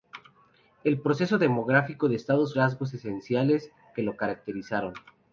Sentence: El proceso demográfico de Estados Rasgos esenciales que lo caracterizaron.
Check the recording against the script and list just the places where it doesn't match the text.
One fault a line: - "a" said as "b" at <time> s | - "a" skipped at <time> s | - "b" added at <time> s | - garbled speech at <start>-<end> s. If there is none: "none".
none